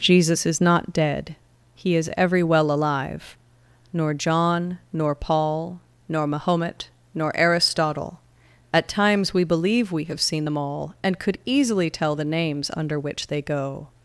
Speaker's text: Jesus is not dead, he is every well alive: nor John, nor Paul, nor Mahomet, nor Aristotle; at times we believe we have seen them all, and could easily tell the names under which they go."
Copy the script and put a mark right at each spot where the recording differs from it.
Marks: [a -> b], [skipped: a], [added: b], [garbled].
Jesus is not dead, he is every well alive: nor John, nor Paul, nor Mahomet, nor Aristotle; at times we believe we have seen them all, and could easily tell the names under which they go."